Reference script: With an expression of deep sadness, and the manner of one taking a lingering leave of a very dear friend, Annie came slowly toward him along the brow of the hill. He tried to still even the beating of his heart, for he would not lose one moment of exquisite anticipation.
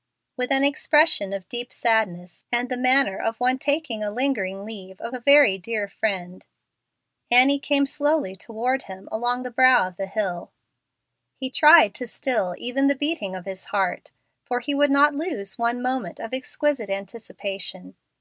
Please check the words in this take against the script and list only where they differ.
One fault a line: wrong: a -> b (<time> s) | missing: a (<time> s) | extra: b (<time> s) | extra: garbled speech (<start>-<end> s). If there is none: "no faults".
no faults